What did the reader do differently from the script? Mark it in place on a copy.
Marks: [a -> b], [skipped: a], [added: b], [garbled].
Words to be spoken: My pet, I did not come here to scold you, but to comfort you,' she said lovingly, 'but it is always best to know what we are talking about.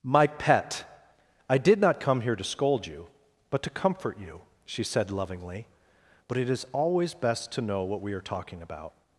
My pet, I did not come here to scold you, but to comfort you,' she said lovingly, 'but it is always best to know what we are talking about.